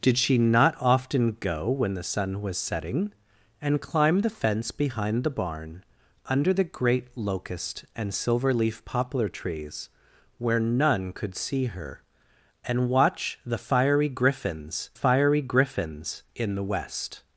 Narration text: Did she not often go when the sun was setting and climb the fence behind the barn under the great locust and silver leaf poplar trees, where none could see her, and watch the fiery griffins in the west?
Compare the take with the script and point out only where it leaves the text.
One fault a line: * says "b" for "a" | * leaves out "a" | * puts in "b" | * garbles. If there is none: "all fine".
* puts in "fiery griffins"